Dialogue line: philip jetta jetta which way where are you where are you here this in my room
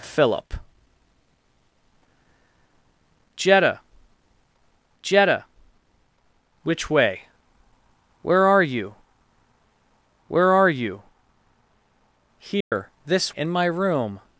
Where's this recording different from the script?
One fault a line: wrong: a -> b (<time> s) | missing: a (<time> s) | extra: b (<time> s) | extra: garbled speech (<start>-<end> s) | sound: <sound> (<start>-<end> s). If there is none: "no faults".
sound: dropout (12.6-12.7 s)